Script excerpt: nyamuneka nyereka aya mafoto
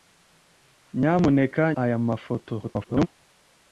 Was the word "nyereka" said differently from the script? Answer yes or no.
yes